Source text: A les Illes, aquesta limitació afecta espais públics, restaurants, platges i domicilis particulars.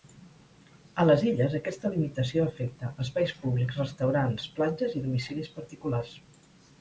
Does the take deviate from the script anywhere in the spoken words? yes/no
no